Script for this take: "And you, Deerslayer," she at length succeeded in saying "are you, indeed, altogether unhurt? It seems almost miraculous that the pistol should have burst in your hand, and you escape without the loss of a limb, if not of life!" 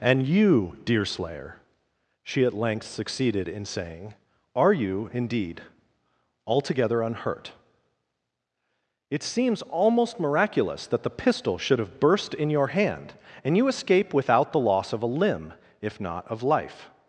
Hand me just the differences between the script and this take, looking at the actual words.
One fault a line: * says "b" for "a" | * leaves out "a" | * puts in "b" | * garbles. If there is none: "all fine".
all fine